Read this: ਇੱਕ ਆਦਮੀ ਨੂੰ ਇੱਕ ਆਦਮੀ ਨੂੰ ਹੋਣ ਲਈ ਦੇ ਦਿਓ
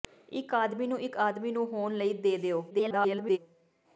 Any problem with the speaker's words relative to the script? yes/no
yes